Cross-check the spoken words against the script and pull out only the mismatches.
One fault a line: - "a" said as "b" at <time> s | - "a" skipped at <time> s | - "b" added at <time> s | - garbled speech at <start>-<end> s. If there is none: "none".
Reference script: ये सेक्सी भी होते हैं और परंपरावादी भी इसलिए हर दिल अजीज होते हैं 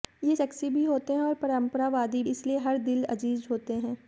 - "भी" skipped at 2.2 s